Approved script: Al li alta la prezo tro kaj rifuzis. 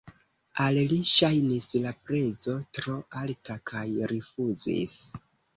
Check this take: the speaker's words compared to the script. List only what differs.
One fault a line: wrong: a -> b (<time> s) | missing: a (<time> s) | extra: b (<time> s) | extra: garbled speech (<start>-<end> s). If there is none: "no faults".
wrong: alta -> ŝajnis (1.1 s)
extra: alta (3.2 s)